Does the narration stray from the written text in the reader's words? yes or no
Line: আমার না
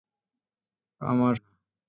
no